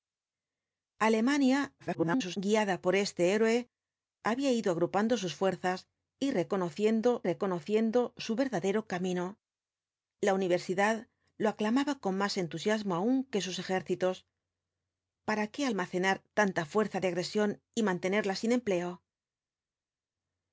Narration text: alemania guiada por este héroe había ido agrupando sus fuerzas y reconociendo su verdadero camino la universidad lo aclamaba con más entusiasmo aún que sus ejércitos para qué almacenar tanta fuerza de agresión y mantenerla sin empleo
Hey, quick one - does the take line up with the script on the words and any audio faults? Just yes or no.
no